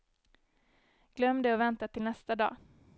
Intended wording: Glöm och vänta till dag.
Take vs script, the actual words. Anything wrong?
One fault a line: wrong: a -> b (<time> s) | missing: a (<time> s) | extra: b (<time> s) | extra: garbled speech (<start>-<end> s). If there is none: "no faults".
extra: det (1.4 s)
extra: nästa (2.0 s)